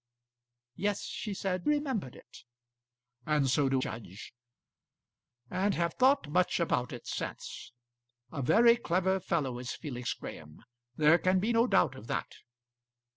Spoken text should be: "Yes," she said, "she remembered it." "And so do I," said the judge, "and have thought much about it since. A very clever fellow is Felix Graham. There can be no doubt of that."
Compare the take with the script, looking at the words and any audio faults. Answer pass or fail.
fail